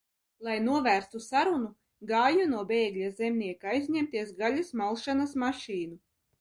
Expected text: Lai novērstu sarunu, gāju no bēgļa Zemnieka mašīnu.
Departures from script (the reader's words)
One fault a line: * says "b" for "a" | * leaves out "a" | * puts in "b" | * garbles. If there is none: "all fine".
* puts in "aizņemties gaļas malšanas"